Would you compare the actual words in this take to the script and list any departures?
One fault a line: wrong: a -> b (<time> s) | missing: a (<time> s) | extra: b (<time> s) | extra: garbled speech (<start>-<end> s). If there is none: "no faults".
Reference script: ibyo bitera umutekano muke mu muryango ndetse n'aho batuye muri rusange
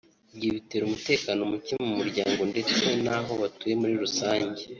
no faults